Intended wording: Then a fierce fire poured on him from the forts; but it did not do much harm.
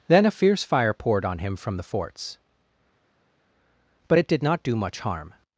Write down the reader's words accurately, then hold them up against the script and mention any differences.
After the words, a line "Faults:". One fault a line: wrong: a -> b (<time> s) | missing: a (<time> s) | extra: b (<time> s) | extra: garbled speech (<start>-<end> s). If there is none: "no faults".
Then a fierce fire poured on him from the forts; but it did not do much harm.
Faults:
no faults